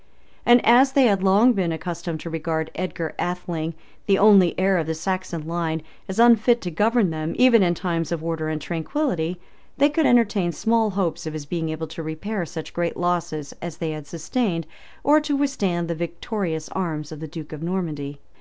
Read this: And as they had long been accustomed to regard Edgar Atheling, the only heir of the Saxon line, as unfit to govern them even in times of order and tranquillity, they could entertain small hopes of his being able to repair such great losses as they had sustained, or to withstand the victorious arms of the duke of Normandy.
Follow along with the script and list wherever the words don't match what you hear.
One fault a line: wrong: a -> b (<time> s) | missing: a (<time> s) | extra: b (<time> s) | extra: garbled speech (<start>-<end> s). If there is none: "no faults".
no faults